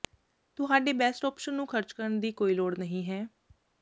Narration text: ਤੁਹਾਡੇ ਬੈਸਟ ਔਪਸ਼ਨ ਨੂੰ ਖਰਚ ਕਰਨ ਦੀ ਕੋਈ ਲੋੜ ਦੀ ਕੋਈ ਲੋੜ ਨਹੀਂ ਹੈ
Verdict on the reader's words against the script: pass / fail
fail